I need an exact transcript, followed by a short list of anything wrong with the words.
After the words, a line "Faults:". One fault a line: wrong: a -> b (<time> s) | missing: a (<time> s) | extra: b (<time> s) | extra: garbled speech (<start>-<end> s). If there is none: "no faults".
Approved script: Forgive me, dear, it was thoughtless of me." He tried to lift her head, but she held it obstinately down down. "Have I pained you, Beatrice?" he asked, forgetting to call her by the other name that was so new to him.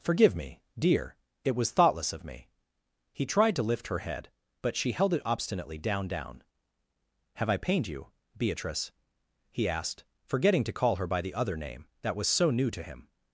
Forgive me, dear, it was thoughtless of me." He tried to lift her head, but she held it obstinately down down. "Have I pained you, Beatrice?" he asked, forgetting to call her by the other name that was so new to him.
Faults:
no faults